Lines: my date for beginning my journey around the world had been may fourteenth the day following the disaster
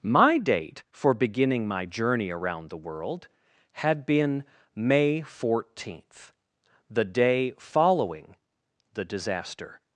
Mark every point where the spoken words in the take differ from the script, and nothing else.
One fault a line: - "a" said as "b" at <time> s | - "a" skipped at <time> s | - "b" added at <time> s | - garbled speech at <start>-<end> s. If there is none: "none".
none